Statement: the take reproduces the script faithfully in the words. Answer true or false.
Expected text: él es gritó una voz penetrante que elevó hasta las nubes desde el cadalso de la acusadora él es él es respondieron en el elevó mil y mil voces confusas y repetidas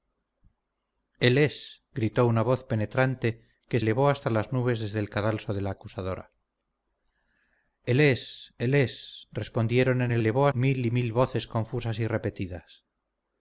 true